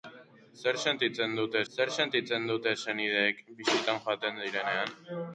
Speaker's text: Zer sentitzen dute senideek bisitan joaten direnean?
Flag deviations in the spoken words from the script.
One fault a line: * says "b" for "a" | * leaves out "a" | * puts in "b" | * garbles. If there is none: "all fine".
* puts in "zer sentitzen dute"